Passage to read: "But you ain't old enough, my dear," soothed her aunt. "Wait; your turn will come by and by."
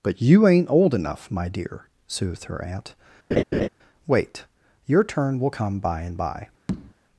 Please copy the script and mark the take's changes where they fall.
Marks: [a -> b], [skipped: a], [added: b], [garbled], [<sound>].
"But you ain't old enough, my dear," soothed her aunt. [laugh] "Wait; your turn will come by and by." [tap]